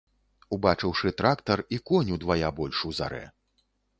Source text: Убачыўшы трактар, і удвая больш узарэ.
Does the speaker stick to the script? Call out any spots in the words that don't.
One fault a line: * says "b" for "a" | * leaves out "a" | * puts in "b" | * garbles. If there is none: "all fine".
* puts in "конь"